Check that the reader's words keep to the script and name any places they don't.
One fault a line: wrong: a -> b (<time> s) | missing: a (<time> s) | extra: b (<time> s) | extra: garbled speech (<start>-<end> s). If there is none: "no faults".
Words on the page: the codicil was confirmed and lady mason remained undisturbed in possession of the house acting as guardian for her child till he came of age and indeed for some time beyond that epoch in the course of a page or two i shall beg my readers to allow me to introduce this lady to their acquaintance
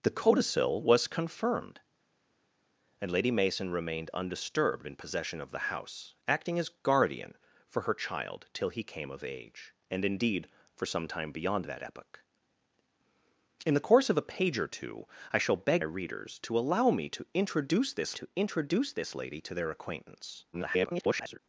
missing: my (15.8 s)
extra: to introduce this (18.1 s)
extra: garbled speech (20.5-21.4 s)